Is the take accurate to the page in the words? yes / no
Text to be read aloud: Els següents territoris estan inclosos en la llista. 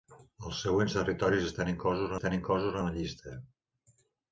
no